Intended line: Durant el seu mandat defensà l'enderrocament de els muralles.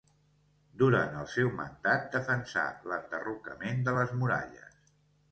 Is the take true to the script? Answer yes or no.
no